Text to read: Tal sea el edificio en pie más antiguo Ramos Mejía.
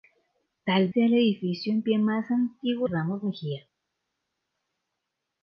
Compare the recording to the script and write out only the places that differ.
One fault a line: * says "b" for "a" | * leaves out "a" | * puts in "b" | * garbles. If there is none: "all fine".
all fine